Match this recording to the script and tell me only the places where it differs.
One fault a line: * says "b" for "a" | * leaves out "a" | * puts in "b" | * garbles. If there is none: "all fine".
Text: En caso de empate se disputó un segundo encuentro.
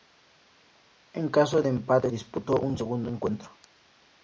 * leaves out "se"